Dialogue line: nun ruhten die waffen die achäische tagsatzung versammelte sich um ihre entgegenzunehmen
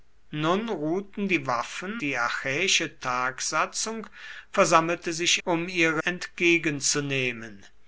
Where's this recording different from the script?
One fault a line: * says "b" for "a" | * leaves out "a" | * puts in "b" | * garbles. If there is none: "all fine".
all fine